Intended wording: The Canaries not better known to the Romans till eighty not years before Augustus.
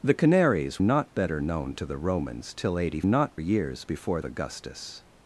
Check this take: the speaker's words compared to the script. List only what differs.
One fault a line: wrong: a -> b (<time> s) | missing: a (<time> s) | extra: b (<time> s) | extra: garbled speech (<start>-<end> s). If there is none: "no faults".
no faults